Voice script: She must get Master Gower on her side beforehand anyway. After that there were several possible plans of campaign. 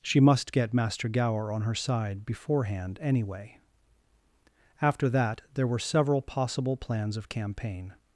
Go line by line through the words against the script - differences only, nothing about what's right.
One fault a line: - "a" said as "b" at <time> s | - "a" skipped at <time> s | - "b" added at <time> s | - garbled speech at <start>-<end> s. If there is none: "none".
none